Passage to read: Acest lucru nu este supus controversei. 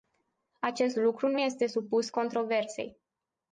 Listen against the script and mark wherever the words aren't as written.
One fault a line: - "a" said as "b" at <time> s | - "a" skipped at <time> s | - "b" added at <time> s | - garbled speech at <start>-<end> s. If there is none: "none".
none